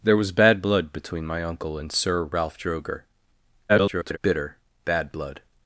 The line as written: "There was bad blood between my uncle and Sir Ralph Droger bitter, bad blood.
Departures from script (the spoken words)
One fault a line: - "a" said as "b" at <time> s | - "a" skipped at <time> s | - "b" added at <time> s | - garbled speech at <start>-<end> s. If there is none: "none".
- garbled speech at 3.7-4.2 s